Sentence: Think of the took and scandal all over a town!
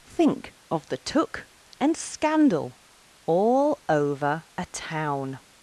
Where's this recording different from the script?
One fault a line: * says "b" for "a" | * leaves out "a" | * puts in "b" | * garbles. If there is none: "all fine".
all fine